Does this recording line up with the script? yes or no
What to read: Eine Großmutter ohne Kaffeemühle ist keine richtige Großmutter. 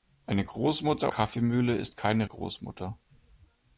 no